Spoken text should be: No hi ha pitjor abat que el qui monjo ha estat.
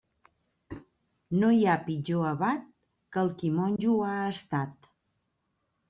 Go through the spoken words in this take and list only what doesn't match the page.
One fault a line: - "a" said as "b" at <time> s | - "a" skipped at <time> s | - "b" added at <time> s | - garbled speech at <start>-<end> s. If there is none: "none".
none